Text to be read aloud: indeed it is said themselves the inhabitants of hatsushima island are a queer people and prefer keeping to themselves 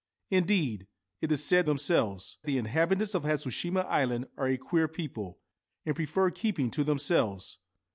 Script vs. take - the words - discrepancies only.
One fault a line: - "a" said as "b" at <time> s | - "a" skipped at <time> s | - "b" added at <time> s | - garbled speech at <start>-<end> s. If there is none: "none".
none